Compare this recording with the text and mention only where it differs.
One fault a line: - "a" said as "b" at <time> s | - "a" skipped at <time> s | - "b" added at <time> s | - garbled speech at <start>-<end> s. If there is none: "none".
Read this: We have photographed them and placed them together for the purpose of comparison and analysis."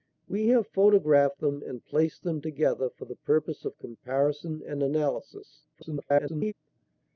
- garbled speech at 5.7-6.5 s